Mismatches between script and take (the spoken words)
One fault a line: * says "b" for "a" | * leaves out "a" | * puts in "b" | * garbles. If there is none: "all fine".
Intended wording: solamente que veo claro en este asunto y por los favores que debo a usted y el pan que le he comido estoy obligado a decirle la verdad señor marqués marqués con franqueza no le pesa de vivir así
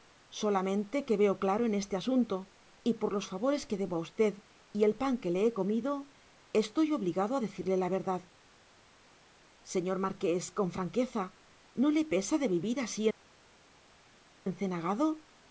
* leaves out "marqués"